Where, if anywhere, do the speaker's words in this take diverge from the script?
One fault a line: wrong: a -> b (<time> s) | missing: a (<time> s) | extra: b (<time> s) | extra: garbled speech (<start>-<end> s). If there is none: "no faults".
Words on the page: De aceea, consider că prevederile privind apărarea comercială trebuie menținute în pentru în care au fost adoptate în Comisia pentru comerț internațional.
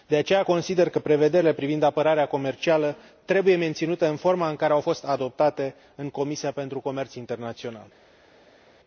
wrong: pentru -> forma (4.2 s)